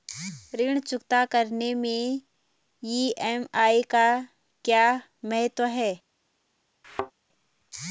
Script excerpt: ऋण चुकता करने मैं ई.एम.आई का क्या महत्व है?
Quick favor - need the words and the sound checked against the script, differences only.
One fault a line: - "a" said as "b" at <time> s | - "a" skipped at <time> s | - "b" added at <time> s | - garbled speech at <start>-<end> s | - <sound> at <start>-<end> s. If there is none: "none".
- thud at 6.8-7.1 s